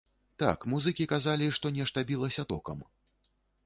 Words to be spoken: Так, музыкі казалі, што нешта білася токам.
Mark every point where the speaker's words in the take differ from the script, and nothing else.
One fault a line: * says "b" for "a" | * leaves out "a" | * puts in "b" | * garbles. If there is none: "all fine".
all fine